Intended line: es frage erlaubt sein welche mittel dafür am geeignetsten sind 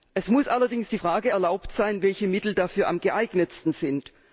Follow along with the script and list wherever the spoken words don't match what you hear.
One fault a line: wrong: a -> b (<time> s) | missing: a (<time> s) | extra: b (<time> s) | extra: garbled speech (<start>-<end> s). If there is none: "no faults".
extra: muss allerdings die (0.3 s)